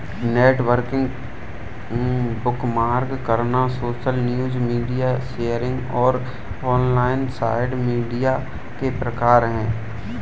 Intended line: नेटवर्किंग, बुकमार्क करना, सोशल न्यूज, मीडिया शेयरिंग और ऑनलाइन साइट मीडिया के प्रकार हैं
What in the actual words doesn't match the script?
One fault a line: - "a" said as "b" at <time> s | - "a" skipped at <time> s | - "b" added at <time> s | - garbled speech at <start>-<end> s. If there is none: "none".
none